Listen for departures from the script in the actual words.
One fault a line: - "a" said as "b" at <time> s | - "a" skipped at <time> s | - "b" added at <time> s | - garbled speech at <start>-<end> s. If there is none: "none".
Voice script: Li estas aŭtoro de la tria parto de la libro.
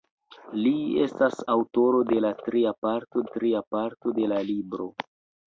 - "tria parto" added at 3.3 s